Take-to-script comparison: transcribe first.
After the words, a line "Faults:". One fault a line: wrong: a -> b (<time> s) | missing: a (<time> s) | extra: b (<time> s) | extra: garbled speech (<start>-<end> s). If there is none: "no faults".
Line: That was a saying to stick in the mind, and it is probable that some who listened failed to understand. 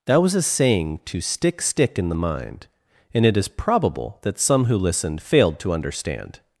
That was a saying to stick stick in the mind, and it is probable that some who listened failed to understand.
Faults:
extra: stick (1.6 s)